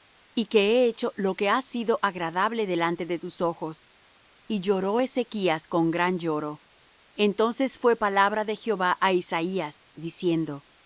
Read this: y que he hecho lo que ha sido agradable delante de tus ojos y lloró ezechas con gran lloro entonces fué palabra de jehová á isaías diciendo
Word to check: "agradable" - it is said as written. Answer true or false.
true